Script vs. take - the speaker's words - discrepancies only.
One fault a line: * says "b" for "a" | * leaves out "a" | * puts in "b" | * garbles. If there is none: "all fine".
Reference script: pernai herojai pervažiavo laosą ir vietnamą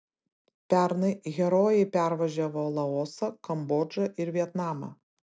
* puts in "kambodžą"